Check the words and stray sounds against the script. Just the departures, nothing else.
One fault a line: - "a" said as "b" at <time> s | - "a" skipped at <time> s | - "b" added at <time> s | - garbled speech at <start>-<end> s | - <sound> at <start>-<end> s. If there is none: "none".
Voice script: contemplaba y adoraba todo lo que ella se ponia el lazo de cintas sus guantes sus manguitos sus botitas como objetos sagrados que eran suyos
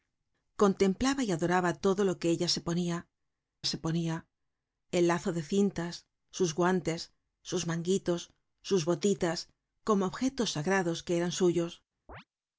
- "se ponia" added at 3.6 s
- chirp at 12.1-12.2 s